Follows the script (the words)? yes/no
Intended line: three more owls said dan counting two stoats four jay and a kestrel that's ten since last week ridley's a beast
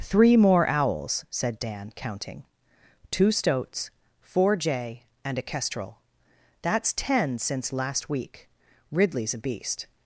yes